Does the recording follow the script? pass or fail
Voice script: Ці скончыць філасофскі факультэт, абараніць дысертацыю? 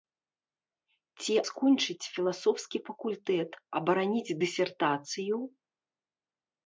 pass